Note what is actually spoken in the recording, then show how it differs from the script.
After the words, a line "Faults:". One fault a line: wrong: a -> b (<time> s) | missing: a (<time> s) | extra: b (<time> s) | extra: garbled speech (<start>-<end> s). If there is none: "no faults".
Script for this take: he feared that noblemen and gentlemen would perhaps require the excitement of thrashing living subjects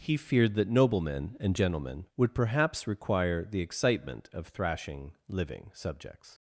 he feared that noblemen and gentlemen would perhaps require the excitement of thrashing living subjects
Faults:
no faults